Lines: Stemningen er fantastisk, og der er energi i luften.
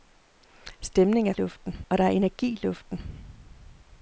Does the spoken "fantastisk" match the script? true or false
false